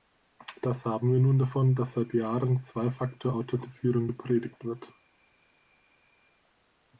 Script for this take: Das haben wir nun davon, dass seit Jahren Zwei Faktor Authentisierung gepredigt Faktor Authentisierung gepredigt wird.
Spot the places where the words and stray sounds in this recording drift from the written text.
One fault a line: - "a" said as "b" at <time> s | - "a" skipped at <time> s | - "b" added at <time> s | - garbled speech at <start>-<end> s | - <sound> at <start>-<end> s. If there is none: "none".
- "Faktor Authentisierung gepredigt" skipped at 4.6 s